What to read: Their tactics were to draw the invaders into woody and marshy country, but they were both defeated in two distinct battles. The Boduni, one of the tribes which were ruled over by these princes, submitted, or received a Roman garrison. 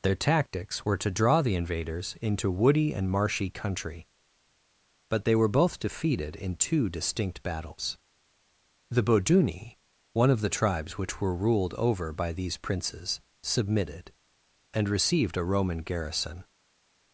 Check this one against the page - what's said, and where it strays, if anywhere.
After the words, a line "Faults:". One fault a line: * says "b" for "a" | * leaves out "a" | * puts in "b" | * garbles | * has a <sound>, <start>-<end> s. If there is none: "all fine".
Their tactics were to draw the invaders into woody and marshy country, but they were both defeated in two distinct battles. The Boduni, one of the tribes which were ruled over by these princes, submitted, and received a Roman garrison.
Faults:
* says "and" for "or"